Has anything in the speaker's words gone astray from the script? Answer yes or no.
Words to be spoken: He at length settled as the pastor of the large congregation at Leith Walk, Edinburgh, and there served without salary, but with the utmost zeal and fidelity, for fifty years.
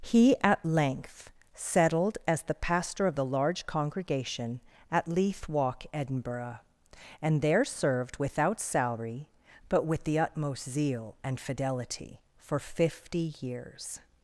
no